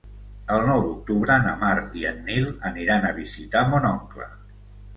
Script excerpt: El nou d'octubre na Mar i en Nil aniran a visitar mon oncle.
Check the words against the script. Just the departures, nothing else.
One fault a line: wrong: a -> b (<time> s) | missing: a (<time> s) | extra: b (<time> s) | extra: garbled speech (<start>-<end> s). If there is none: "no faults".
no faults